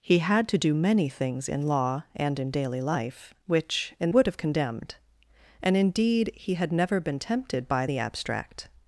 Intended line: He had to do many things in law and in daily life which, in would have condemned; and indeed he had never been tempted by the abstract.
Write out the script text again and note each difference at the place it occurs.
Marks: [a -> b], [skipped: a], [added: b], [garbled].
He had to do many things in law and in daily life which, in would have condemned; and indeed he had never been tempted by the abstract.